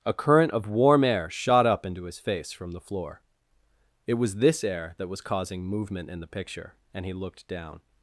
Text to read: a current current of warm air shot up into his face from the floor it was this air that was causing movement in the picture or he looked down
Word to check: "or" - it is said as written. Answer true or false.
false